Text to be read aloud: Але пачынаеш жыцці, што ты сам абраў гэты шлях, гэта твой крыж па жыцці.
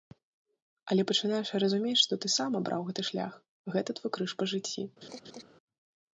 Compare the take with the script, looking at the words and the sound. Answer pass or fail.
fail